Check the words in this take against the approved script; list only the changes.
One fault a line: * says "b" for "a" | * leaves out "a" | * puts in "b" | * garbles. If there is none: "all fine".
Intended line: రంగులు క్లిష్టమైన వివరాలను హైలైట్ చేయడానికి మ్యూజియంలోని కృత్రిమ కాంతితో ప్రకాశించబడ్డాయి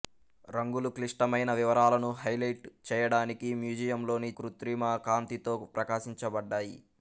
all fine